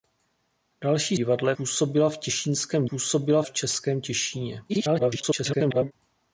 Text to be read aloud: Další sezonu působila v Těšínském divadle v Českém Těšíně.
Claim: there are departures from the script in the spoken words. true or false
true